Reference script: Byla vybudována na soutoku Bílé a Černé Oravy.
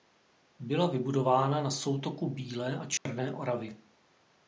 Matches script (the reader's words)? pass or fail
pass